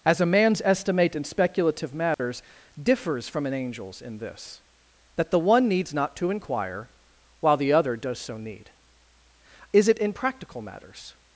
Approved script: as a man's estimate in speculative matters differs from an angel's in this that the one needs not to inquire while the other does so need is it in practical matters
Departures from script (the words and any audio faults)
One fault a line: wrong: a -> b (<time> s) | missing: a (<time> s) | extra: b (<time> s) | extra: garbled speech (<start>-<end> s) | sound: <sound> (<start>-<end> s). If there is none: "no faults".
sound: dropout (2.1-2.2 s)